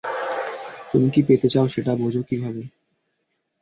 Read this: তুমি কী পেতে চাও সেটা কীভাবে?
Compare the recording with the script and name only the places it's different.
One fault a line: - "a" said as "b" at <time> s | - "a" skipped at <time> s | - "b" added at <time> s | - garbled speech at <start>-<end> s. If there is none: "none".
- "বোঝো" added at 2.0 s